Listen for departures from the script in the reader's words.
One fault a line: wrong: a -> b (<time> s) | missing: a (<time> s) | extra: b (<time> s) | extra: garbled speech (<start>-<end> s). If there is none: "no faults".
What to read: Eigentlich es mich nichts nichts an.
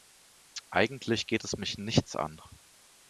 extra: geht (1.3 s)
missing: nichts (2.1 s)